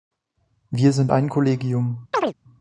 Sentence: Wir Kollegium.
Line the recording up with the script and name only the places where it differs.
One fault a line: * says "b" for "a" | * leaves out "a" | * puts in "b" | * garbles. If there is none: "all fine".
* puts in "sind ein"